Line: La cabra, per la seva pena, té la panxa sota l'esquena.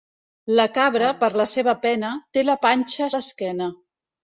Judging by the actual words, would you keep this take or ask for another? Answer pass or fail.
fail